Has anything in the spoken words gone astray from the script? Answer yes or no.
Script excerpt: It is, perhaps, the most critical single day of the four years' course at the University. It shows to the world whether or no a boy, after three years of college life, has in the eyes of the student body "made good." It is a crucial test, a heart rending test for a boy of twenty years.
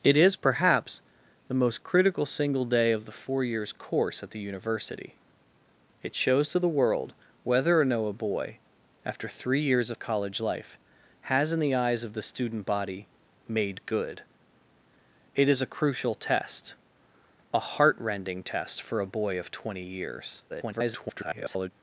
yes